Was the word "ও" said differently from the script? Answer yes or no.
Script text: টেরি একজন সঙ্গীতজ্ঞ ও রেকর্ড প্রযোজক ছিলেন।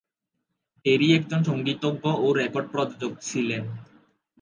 no